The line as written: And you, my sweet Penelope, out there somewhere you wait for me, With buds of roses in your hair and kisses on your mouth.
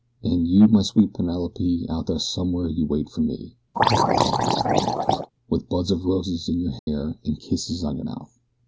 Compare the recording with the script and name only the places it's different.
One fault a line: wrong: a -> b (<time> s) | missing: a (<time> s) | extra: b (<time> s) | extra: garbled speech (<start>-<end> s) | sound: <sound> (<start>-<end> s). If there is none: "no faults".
sound: throat clearing (3.7-5.3 s)
sound: dropout (6.8-6.9 s)